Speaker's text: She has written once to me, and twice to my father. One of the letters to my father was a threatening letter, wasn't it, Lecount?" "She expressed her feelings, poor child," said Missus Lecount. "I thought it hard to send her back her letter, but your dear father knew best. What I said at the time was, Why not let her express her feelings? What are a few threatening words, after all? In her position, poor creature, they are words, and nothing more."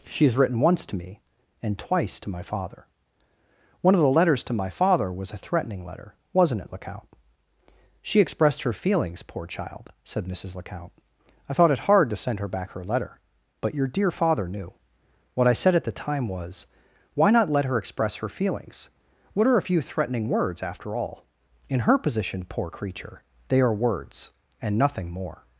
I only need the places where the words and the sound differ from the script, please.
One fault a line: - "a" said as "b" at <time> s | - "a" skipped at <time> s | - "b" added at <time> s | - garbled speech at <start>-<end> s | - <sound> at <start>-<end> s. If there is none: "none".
- "best" skipped at 14.7 s